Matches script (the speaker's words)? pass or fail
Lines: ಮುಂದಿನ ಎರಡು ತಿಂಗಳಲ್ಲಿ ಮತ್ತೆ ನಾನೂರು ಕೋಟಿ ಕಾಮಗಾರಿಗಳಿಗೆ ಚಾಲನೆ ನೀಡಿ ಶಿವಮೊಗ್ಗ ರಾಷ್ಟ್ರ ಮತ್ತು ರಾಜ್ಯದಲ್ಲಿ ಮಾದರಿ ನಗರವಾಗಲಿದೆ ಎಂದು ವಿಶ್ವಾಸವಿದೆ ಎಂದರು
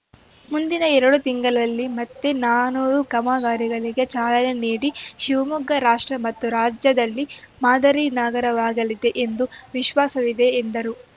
fail